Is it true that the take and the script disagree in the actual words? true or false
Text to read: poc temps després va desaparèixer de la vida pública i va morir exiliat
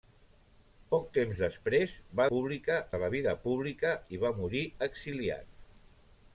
true